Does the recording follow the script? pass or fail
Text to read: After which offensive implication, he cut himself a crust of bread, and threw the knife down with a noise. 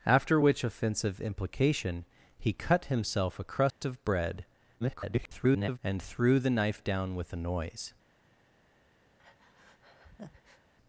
fail